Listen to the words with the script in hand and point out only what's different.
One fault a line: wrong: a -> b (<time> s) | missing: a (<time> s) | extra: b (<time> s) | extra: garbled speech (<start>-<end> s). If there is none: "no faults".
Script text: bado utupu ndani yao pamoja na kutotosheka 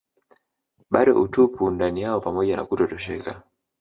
no faults